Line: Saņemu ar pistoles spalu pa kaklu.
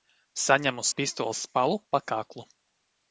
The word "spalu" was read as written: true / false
true